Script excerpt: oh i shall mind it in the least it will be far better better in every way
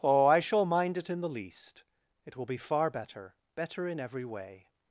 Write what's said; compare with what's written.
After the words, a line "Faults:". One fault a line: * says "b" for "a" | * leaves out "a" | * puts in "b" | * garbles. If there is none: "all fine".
oh i shall mind it in the least it will be far better better in every way
Faults:
all fine